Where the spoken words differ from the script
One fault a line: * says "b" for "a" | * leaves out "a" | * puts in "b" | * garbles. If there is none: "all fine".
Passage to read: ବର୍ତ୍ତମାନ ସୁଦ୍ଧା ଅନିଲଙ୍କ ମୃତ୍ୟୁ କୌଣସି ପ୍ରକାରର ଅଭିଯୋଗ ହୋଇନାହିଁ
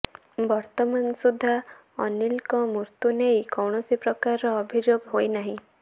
* puts in "ନେଇ"